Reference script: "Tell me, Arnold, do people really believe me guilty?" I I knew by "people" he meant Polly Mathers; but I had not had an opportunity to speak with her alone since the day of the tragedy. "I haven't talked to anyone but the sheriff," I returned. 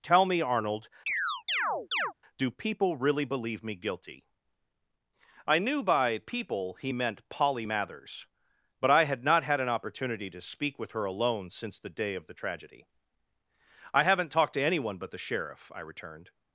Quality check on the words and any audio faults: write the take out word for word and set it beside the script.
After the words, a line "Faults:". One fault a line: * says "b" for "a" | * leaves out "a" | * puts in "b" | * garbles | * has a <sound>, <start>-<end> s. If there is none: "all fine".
"Tell me, Arnold, do people really believe me guilty?" I knew by "people" he meant Polly Mathers; but I had not had an opportunity to speak with her alone since the day of the tragedy. "I haven't talked to anyone but the sheriff," I returned.
Faults:
* has a chirp, 1.1-2.1 s
* leaves out "I"